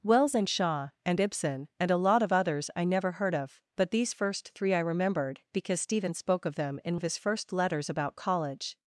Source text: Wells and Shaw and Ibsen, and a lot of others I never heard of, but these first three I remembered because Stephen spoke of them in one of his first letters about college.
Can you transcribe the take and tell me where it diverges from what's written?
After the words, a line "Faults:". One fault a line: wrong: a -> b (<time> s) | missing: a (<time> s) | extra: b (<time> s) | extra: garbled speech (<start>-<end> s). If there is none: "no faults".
Wells and Shaw and Ibsen, and a lot of others I never heard of, but these first three I remembered because Stephen spoke of them in of his first letters about college.
Faults:
missing: one (7.0 s)